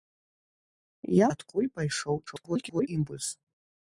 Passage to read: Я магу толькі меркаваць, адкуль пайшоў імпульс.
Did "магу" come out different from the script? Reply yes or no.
yes